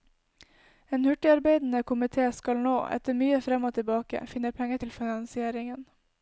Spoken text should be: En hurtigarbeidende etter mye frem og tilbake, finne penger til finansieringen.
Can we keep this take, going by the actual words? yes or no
no